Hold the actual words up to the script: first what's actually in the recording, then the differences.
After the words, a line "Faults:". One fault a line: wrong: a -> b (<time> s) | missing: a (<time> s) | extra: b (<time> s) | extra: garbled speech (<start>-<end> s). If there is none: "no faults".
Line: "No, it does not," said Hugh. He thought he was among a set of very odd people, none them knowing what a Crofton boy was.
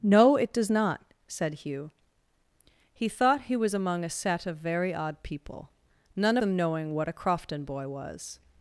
"No, it does not," said Hugh. He thought he was among a set of very odd people, none them knowing what a Crofton boy was.
Faults:
no faults